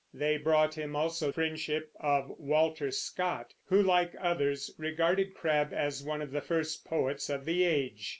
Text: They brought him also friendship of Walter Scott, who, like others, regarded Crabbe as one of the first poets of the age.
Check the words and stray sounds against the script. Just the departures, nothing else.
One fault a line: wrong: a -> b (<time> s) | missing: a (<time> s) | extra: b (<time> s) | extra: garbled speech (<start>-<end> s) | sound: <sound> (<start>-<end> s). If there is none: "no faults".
no faults